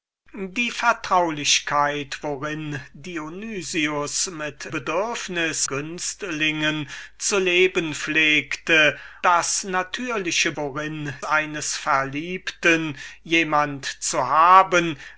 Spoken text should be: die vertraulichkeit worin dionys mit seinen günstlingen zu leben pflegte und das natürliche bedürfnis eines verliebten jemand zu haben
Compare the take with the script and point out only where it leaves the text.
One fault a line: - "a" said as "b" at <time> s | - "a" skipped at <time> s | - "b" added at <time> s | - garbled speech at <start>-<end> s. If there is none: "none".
- "seinen" said as "bedürfnis" at 4.7 s
- "und" skipped at 9.0 s
- "bedürfnis" said as "worin" at 10.6 s